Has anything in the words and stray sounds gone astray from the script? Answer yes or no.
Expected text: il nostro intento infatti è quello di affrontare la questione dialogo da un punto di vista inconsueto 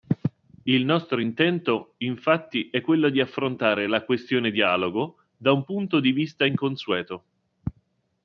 no